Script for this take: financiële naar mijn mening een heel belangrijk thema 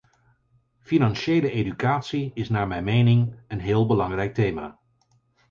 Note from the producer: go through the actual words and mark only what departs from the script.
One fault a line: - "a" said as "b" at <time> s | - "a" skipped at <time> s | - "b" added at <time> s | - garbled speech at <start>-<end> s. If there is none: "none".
- "educatie is" added at 1.5 s